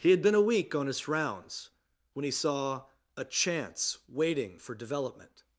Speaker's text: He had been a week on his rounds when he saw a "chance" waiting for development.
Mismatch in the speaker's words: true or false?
false